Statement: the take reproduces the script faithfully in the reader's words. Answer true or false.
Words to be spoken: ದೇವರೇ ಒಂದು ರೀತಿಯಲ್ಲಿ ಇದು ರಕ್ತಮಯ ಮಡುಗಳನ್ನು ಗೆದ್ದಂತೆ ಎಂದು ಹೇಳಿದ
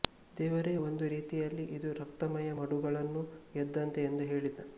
true